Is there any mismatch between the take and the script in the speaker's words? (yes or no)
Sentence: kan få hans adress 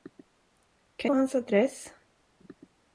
no